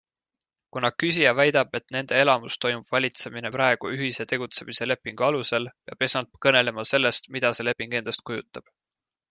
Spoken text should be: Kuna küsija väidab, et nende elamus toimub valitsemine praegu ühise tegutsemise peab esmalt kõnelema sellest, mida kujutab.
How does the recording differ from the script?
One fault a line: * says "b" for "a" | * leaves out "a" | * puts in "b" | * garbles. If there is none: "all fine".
* puts in "lepingu alusel"
* puts in "see leping endast"